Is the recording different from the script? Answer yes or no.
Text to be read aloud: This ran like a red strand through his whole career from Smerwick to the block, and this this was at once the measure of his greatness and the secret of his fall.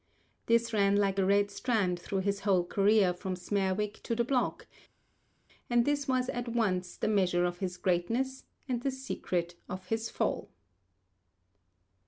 yes